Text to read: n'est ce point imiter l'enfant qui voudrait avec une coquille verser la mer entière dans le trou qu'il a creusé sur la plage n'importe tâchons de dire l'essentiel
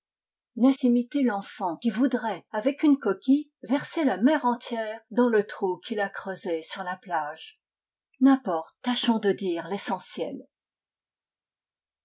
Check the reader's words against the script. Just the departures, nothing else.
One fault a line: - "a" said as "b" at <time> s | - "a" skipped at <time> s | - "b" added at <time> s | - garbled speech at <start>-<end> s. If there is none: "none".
- "ce point" skipped at 0.7 s